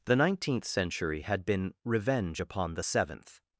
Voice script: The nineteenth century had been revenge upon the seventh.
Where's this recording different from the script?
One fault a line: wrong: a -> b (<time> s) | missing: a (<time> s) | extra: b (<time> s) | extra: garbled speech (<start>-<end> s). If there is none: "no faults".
no faults